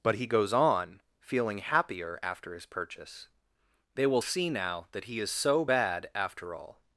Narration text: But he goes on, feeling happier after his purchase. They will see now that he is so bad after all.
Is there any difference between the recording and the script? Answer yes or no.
no